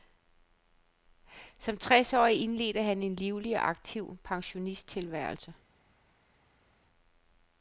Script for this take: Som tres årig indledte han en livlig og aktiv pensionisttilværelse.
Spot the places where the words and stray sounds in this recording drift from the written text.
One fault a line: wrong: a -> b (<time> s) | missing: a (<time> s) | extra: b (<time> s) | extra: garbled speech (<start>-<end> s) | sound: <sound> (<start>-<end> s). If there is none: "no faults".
no faults